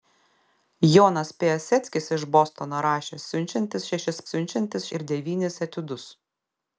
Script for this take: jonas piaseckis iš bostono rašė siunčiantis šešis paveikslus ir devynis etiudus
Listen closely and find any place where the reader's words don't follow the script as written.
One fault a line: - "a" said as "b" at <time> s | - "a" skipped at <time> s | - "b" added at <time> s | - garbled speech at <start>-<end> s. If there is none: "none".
- "paveikslus" said as "siunčiantis" at 4.3 s